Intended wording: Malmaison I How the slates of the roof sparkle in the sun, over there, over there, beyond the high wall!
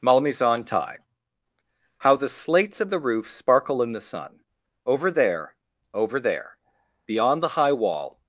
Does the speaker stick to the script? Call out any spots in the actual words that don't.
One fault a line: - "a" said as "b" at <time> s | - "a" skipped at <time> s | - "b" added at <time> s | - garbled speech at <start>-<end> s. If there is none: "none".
- "I" said as "tie" at 0.6 s